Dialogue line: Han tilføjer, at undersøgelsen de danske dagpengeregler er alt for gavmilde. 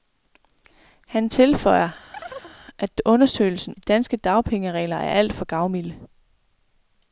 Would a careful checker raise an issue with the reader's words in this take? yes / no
no